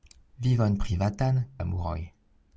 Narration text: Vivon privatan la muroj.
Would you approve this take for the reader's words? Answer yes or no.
yes